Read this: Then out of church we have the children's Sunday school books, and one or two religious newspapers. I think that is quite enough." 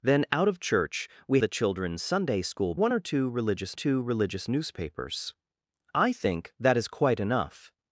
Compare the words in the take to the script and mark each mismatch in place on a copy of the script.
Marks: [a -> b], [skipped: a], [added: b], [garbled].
Then out of church we [skipped: have] the children's Sunday school [books, and one or -> one or two religious] two religious newspapers. I think that is quite enough."